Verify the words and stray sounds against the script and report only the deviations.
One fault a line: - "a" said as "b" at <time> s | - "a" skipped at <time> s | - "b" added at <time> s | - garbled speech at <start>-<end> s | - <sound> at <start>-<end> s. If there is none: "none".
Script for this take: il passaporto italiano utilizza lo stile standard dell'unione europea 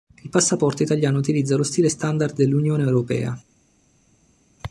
none